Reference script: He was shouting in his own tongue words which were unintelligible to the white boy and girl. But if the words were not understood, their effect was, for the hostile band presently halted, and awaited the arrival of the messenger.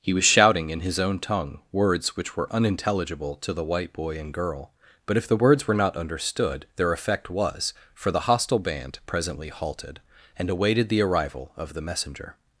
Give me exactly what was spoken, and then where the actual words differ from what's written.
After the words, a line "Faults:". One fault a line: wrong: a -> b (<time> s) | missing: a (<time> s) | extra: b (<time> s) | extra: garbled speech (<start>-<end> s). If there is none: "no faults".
He was shouting in his own tongue words which were unintelligible to the white boy and girl. But if the words were not understood, their effect was, for the hostile band presently halted, and awaited the arrival of the messenger.
Faults:
no faults